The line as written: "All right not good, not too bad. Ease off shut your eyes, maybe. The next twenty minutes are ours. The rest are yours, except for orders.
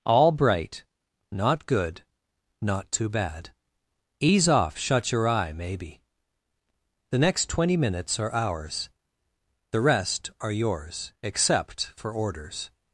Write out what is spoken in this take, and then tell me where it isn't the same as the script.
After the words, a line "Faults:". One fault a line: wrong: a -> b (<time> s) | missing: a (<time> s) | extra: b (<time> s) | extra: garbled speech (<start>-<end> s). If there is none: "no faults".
"All bright not good, not too bad. Ease off shut your eye, maybe. The next twenty minutes are ours. The rest are yours, except for orders.
Faults:
wrong: right -> bright (0.3 s)
wrong: eyes -> eye (5.3 s)